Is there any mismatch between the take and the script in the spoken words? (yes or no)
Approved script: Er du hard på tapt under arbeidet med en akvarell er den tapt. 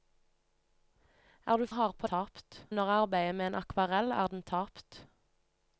no